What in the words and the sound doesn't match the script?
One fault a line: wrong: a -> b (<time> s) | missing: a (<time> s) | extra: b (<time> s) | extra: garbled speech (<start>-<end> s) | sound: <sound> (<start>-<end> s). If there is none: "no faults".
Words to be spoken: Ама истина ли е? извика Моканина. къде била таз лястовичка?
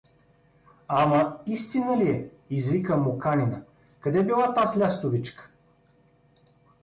no faults